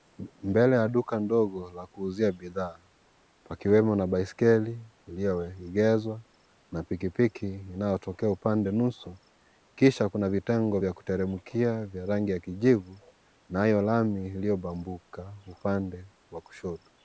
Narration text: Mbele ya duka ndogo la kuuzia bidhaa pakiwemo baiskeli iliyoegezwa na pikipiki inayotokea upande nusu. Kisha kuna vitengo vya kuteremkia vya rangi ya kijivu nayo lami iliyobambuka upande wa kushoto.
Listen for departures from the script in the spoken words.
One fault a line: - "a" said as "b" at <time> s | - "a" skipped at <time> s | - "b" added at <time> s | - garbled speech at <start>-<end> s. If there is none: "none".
- "na" added at 4.0 s